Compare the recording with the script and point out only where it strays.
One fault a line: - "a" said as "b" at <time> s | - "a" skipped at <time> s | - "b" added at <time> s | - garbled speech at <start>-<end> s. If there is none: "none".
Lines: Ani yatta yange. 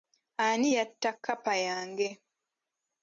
- "kkapa" added at 1.1 s